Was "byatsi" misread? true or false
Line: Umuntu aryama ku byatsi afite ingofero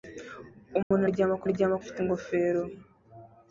true